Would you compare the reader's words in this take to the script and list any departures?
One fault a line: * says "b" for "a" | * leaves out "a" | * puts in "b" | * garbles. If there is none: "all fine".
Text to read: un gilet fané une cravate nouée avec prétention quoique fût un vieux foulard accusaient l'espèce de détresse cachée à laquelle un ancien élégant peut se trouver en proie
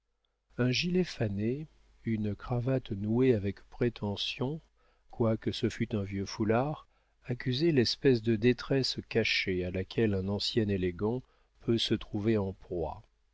* puts in "ce"